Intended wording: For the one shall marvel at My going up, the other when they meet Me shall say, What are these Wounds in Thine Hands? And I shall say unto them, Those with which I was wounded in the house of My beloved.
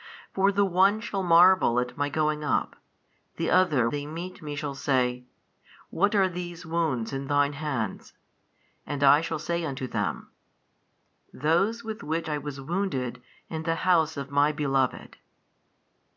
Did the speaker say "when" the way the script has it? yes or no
no